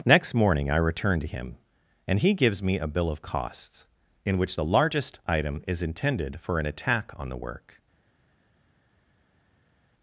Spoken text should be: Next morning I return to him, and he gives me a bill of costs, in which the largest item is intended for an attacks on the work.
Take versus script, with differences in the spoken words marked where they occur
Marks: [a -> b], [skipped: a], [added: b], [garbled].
Next morning I return to him, and he gives me a bill of costs, in which the largest item is intended for an [attacks -> attack] on the work.